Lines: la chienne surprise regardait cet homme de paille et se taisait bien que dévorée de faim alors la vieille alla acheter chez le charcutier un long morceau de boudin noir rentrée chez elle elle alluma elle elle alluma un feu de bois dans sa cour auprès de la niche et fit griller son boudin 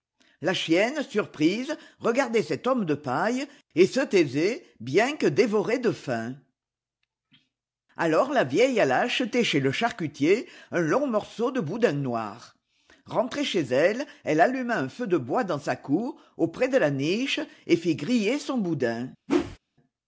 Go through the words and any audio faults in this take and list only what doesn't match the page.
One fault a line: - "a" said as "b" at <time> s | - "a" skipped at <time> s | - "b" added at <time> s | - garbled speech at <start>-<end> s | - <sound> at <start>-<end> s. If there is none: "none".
- "elle elle alluma" skipped at 14.8 s
- whoosh at 19.3-19.6 s